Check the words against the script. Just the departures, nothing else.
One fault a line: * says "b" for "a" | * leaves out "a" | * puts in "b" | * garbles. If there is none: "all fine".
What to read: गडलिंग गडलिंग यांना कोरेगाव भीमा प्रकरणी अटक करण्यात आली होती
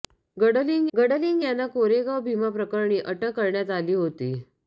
all fine